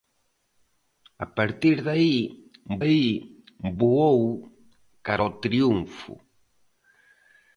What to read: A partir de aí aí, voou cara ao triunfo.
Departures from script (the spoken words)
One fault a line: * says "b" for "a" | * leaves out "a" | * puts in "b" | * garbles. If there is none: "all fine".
all fine